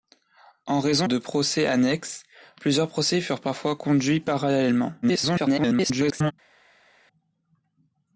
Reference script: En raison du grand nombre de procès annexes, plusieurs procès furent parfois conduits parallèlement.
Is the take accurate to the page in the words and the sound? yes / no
no